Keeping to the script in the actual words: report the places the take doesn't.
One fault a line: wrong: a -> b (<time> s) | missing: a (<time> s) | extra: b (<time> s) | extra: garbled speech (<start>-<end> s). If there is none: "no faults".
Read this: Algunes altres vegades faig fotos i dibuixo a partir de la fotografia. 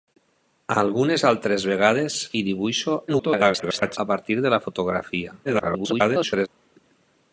missing: faig fotos (2.2 s)
extra: garbled speech (3.1-4.0 s)
extra: garbled speech (5.4-6.5 s)